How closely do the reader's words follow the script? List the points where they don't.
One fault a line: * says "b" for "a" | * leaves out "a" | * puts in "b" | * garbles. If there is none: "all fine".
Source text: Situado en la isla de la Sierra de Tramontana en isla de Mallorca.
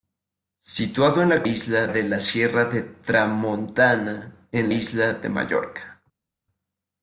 all fine